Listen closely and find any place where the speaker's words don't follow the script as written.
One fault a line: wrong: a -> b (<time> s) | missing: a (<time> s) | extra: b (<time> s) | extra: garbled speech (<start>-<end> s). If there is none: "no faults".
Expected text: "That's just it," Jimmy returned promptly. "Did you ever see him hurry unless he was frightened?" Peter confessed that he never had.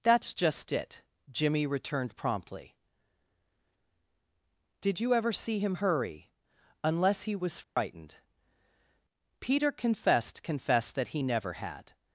extra: confessed (10.4 s)